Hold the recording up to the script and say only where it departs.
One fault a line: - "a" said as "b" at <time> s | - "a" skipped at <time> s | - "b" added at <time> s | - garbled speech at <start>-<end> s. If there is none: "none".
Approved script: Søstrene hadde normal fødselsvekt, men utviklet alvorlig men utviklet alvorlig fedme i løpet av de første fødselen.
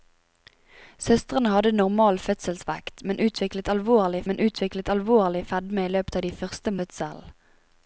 none